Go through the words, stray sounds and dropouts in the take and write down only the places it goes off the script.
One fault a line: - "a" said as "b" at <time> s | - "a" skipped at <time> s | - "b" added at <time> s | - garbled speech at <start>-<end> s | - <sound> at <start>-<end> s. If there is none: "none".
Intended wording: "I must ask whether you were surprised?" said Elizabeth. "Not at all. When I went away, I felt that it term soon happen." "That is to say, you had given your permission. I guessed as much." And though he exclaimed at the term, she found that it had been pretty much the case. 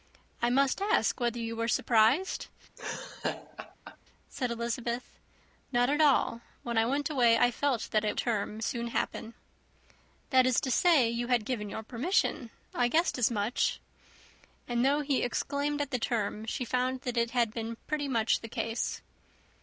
- laugh at 2.8-4.0 s